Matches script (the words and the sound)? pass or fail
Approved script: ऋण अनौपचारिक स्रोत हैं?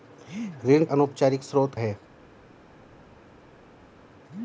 pass